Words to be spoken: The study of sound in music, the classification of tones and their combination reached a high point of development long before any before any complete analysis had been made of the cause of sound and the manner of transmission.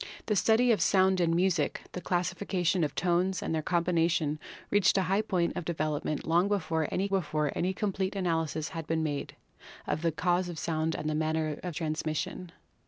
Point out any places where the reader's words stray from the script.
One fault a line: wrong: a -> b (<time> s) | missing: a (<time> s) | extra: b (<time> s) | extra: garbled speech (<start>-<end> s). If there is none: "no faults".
no faults